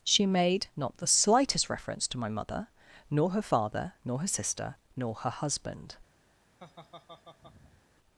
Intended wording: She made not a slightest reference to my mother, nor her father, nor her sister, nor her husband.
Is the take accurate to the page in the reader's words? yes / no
no